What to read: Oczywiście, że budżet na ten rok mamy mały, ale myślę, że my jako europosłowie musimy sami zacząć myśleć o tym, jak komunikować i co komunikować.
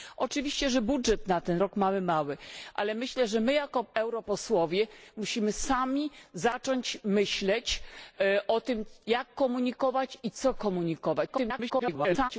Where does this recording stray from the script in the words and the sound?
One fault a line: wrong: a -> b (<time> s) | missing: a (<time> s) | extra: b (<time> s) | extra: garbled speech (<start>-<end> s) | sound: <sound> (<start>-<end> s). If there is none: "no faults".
extra: garbled speech (11.3-12.3 s)